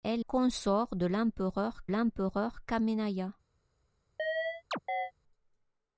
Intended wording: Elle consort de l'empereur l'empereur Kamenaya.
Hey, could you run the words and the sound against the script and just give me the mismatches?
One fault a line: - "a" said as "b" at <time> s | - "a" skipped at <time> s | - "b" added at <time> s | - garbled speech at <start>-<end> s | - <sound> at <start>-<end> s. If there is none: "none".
- chirp at 4.2-5.1 s